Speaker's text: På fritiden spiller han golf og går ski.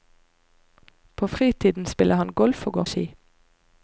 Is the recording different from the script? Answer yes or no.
no